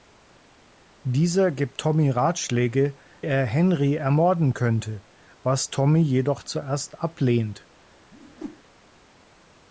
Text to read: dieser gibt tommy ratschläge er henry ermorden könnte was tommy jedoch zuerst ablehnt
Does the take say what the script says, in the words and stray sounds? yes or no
no